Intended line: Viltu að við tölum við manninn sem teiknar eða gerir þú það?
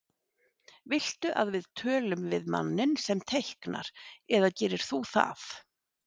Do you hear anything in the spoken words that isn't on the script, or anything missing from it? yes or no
no